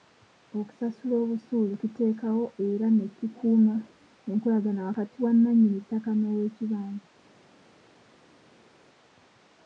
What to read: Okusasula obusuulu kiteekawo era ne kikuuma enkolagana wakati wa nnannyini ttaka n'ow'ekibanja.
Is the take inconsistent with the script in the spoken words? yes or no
no